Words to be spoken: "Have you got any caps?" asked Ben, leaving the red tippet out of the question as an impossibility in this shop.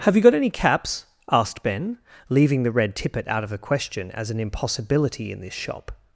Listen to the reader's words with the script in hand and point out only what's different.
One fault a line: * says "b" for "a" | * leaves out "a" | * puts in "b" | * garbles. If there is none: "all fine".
all fine